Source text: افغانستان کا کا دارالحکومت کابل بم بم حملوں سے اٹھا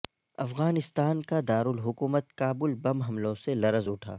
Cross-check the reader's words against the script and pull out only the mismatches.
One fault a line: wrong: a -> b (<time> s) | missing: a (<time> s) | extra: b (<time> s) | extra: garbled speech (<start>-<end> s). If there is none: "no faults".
missing: کا (1.4 s)
missing: بم (3.0 s)
extra: لرز (3.5 s)